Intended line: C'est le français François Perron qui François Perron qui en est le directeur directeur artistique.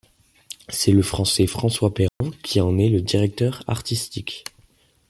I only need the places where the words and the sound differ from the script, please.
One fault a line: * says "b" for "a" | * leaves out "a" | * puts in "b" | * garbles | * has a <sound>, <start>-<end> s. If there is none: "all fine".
* has a dropout, 2.1-2.2 s
* leaves out "François Perron qui"
* leaves out "directeur"